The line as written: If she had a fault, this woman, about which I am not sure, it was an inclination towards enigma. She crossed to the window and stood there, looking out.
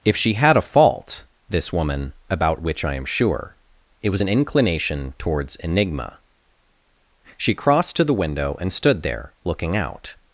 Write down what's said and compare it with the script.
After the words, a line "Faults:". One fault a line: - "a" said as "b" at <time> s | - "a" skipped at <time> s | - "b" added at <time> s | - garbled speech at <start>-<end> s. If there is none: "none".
If she had a fault, this woman, about which I am sure, it was an inclination towards enigma. She crossed to the window and stood there, looking out.
Faults:
- "not" skipped at 3.0 s